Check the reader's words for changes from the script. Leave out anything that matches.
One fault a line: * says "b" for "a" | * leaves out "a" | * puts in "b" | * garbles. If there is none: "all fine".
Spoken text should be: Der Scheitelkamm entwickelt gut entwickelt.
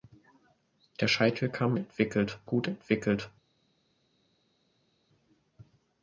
all fine